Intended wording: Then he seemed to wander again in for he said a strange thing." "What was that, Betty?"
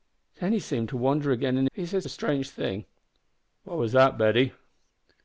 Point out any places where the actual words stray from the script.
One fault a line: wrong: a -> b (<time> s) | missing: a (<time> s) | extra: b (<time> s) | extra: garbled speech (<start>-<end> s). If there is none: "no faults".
no faults